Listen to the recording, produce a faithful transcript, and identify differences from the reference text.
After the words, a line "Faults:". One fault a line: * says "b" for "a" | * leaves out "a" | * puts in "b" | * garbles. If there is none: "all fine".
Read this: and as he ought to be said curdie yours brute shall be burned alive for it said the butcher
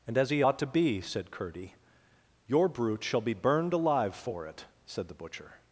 and as he ought to be said curdie your brute shall be burned alive for it said the butcher
Faults:
* says "your" for "yours"